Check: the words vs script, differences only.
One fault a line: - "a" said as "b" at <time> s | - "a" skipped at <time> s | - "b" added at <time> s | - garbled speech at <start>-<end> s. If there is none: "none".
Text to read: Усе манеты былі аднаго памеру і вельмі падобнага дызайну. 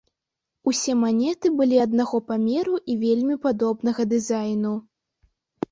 none